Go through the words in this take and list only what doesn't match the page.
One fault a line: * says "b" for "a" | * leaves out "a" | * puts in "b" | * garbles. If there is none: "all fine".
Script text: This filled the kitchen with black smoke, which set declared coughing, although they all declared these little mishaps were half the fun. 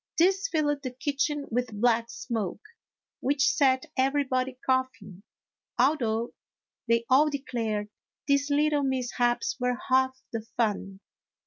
* says "everybody" for "declared"